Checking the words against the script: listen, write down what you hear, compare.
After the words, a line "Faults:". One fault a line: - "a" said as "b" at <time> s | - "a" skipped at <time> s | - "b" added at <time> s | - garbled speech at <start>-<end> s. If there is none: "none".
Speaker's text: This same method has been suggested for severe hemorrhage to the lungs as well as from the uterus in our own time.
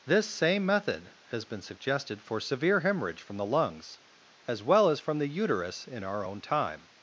This same method has been suggested for severe hemorrhage from the lungs as well as from the uterus in our own time.
Faults:
- "to" said as "from" at 3.2 s